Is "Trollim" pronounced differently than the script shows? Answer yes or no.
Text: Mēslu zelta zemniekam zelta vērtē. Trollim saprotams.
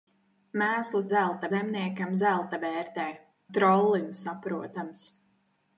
no